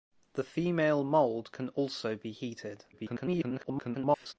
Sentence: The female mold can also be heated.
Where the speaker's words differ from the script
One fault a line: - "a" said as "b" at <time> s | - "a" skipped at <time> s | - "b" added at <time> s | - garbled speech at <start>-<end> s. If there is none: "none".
- garbled speech at 2.9-4.3 s